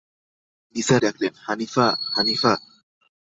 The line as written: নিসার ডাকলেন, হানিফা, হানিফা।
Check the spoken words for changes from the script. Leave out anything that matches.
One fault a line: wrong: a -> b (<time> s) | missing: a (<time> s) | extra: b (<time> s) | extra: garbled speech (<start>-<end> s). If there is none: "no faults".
no faults